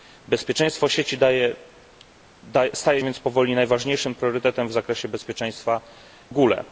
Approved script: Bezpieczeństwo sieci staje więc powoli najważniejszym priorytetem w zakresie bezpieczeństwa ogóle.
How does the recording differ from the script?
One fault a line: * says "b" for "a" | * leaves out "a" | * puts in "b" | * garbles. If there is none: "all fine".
all fine